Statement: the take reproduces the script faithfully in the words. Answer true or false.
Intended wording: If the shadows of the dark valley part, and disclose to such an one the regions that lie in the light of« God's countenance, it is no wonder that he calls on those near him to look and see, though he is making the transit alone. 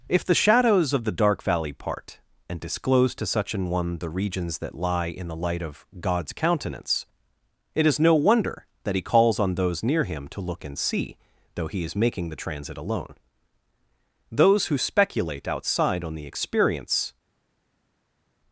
false